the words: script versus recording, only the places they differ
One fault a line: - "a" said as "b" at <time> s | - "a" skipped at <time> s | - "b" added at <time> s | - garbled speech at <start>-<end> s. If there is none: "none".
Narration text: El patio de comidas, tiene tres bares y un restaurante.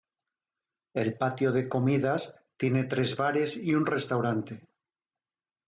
none